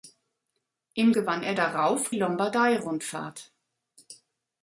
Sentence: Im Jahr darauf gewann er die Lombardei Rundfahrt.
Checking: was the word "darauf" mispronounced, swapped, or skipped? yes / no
yes